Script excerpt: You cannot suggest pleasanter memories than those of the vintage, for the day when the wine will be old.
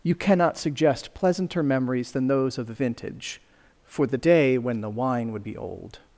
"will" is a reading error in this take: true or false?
true